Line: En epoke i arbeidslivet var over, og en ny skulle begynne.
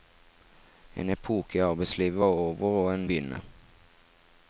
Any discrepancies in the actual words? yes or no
yes